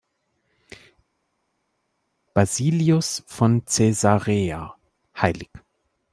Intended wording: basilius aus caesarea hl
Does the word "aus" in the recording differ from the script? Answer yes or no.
yes